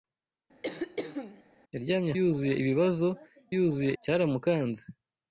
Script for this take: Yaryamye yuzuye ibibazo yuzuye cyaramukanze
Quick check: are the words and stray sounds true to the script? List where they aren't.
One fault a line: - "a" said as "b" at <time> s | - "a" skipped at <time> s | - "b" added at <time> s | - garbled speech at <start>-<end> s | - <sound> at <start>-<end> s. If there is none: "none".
- throat clearing at 0.6-1.4 s